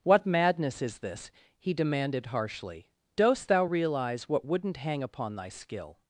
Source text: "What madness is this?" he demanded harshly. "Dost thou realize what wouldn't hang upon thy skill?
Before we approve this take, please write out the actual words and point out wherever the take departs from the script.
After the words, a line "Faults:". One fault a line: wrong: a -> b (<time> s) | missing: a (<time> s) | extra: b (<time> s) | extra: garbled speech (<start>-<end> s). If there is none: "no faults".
"What madness is this?" he demanded harshly. "Dost thou realize what wouldn't hang upon thy skill?
Faults:
no faults